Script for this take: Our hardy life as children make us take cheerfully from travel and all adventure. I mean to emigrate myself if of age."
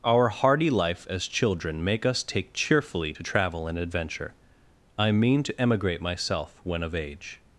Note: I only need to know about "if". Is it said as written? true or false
false